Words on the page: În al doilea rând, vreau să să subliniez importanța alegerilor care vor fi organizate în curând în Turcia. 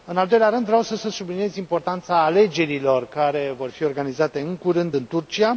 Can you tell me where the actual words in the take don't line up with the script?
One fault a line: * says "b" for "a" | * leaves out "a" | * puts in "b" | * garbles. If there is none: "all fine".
all fine